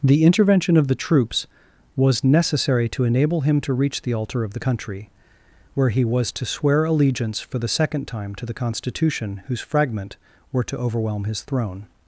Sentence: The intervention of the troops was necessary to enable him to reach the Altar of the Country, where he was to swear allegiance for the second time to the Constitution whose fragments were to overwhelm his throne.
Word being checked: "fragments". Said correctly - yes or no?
no